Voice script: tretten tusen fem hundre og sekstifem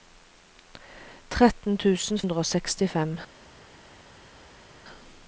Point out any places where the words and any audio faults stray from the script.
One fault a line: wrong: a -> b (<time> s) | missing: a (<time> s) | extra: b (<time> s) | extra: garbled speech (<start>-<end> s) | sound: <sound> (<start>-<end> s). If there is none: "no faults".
missing: fem (2.2 s)